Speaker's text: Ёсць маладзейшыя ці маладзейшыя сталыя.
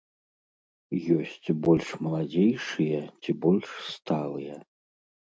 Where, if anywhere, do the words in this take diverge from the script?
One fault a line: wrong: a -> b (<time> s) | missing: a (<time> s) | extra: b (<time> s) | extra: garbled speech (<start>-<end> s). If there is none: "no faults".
extra: больш (1.7 s)
wrong: маладзейшыя -> больш (3.4 s)